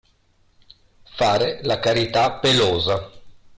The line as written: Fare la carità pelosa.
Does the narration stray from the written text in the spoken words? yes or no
no